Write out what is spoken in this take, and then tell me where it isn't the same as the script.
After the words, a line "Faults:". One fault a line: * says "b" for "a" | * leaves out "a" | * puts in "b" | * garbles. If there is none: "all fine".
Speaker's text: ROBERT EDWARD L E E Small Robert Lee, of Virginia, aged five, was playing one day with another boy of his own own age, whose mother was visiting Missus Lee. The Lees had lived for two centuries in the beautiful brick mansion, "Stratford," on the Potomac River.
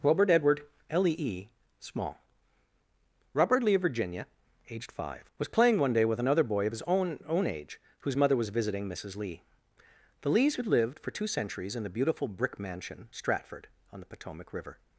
ROBERT EDWARD L E E Small Robert Lee, of Virginia, aged five, was playing one day with another boy of his own own age, whose mother was visiting Missus Lee. The Lees had lived for two centuries in the beautiful brick mansion, "Stratford," on the Potomac River.
Faults:
all fine